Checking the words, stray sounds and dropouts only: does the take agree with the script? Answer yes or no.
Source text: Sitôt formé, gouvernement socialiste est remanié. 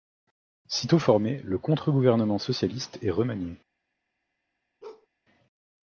no